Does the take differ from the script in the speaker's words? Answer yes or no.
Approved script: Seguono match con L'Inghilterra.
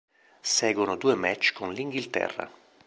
yes